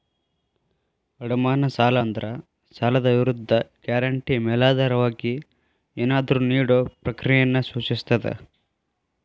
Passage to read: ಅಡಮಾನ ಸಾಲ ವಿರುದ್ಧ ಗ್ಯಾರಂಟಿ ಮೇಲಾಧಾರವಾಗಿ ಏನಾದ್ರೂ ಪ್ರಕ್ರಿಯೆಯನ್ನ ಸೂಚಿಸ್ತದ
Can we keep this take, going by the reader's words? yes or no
no